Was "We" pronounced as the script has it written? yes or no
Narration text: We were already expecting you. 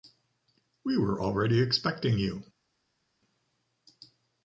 yes